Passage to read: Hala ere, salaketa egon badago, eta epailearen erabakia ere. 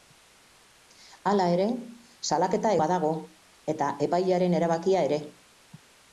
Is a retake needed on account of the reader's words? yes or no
yes